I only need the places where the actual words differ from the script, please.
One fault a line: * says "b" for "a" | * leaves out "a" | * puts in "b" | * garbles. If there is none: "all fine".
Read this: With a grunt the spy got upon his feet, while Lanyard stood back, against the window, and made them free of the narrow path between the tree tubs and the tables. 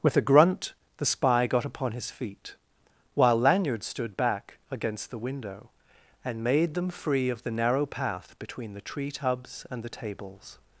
all fine